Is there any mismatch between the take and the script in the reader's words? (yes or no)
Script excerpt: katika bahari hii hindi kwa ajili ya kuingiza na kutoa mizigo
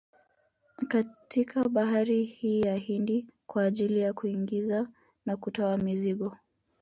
yes